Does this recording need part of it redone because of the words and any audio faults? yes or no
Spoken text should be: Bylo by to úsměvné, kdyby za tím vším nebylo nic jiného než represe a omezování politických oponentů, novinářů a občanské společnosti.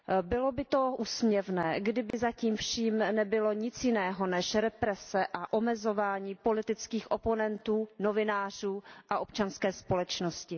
yes